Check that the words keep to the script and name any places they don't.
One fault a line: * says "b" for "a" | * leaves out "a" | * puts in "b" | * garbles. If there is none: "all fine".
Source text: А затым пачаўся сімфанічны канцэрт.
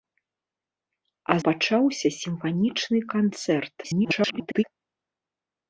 * leaves out "затым"
* garbles